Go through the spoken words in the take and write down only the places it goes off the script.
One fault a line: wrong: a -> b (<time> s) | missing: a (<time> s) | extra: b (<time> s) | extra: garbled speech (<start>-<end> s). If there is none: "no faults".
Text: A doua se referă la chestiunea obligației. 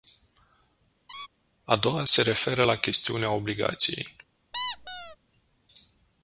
no faults